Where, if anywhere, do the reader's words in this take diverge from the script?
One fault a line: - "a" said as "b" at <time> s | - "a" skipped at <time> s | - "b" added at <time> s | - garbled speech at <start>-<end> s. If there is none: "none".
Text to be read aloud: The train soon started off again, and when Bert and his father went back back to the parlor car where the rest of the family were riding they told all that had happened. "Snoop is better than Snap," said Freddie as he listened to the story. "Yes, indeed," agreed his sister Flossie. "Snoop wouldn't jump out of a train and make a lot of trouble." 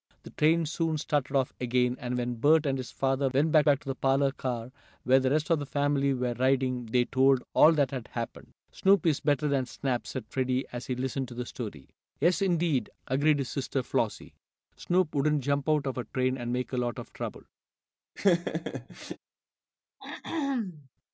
none